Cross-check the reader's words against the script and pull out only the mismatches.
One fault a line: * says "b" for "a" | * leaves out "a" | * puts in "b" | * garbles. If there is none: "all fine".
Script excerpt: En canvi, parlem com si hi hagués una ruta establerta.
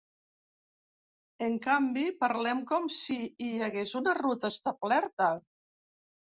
all fine